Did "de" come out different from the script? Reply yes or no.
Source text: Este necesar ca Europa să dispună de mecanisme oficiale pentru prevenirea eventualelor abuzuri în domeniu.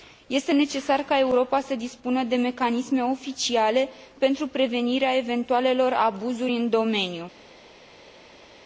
no